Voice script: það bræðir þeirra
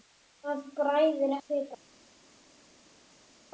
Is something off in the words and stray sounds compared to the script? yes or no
no